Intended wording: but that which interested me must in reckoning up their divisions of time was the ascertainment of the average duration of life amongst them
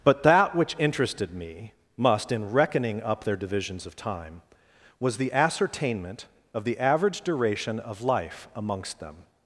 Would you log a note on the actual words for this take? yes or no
no